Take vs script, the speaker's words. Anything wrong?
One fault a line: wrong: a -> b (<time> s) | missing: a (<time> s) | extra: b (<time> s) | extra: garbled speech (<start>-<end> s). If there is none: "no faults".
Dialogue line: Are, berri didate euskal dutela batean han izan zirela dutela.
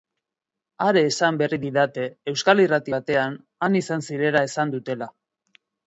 extra: esan (1.1 s)
wrong: dutela -> irrati (2.6 s)
extra: esan (4.5 s)